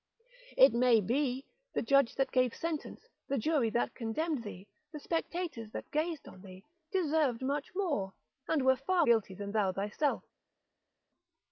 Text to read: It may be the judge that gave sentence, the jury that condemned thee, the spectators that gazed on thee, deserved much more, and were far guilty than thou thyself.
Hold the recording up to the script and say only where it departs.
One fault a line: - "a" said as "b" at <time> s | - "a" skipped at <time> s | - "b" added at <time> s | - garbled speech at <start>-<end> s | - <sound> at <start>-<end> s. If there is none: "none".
none